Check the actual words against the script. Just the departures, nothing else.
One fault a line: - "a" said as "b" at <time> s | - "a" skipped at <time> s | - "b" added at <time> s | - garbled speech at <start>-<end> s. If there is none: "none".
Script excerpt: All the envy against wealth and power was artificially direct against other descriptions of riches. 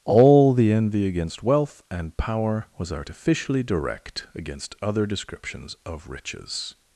none